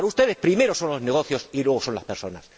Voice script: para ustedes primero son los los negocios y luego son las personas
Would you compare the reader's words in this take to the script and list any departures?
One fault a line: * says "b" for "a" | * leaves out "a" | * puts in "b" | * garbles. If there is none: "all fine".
* leaves out "los"